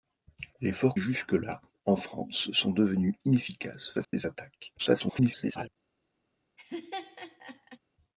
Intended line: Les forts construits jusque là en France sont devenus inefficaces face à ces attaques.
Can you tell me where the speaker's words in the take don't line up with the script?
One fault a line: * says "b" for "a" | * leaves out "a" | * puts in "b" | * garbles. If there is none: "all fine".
* leaves out "construits"
* leaves out "face"
* garbles